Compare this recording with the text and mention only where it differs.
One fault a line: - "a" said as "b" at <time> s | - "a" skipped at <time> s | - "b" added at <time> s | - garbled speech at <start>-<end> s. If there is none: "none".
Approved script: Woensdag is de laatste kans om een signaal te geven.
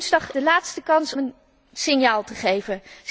- "is" skipped at 0.3 s
- "om" skipped at 1.1 s